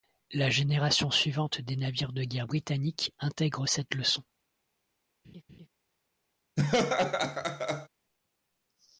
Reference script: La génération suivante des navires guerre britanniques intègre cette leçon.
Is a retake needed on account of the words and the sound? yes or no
yes